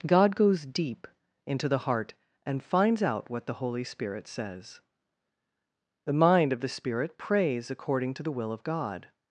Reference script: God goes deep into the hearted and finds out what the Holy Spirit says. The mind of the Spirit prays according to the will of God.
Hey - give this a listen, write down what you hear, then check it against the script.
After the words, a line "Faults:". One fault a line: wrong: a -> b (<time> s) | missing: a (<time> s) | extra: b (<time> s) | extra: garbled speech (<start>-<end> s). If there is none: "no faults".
God goes deep into the heart and finds out what the Holy Spirit says. The mind of the Spirit prays according to the will of God.
Faults:
wrong: hearted -> heart (1.8 s)